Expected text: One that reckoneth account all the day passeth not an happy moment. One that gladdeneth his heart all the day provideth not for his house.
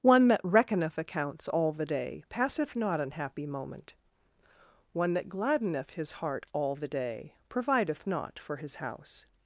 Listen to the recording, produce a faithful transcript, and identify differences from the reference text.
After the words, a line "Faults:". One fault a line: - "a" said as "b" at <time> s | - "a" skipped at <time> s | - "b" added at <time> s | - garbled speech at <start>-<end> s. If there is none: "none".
One that reckoneth accounts all the day passeth not an happy moment. One that gladdeneth his heart all the day provideth not for his house.
Faults:
- "account" said as "accounts" at 1.0 s